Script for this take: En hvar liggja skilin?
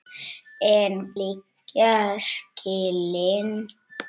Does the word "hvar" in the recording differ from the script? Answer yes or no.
yes